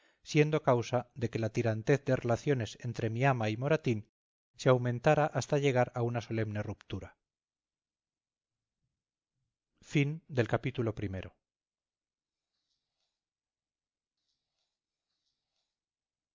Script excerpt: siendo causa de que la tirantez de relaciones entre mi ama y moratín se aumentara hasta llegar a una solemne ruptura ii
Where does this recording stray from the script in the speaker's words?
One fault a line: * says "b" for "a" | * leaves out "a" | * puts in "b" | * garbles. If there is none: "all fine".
all fine